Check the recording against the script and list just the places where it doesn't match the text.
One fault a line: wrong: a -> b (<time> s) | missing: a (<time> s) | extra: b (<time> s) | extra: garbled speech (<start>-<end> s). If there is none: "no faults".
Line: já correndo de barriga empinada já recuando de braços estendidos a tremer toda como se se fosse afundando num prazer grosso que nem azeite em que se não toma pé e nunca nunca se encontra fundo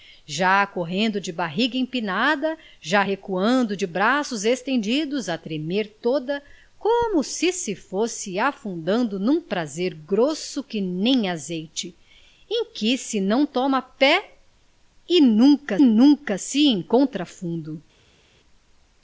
no faults